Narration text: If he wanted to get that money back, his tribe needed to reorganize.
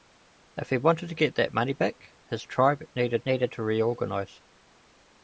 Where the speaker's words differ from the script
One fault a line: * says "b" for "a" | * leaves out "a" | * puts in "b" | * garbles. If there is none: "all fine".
* puts in "needed"